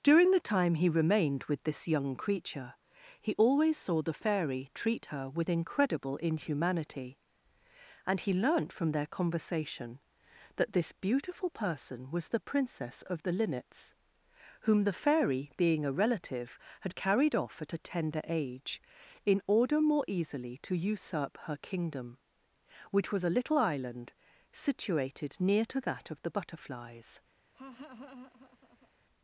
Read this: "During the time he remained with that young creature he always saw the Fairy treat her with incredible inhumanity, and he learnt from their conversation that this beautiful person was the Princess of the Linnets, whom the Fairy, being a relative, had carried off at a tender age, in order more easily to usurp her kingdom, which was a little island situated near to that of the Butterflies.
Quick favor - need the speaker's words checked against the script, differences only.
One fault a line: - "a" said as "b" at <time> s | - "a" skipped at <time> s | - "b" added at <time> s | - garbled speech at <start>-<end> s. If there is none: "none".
- "that" said as "this" at 1.6 s